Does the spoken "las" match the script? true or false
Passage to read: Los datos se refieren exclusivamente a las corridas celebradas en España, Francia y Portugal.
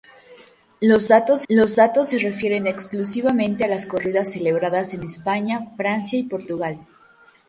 true